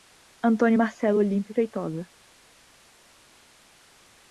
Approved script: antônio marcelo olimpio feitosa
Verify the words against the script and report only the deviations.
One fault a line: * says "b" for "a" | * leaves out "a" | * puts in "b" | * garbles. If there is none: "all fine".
all fine